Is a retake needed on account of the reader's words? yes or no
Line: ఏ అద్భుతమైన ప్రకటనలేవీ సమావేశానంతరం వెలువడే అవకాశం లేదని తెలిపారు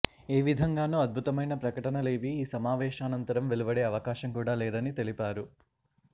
yes